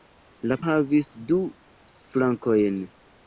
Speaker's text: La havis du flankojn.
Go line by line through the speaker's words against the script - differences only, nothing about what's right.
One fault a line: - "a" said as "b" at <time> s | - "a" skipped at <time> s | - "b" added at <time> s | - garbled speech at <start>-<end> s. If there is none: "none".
none